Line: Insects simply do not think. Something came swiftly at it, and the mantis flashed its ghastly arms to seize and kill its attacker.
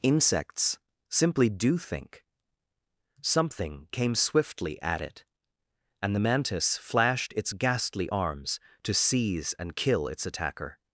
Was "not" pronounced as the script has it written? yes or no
no